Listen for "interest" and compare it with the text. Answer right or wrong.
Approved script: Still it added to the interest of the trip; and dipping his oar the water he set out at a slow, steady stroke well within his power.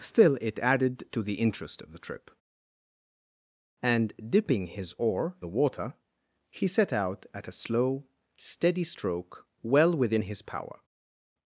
right